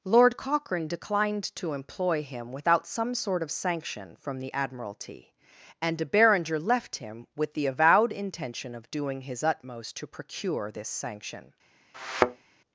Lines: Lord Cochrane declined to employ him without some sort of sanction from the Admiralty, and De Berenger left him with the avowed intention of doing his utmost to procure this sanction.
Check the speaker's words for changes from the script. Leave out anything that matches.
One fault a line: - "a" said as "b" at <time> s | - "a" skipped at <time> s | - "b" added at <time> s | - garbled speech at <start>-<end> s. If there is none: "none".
none